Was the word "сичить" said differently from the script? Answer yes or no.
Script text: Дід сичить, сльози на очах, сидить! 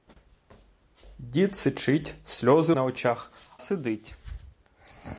no